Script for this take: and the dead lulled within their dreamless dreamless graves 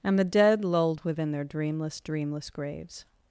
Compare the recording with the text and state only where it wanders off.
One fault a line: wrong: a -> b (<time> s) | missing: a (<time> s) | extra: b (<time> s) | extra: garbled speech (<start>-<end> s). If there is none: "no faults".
no faults